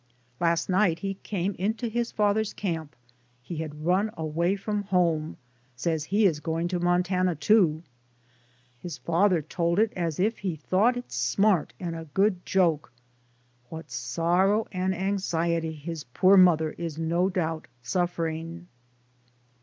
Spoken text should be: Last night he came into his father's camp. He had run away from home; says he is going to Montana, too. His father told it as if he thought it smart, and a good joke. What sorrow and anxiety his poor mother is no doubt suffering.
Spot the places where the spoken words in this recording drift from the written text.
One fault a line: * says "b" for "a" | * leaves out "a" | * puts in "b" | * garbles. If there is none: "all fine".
all fine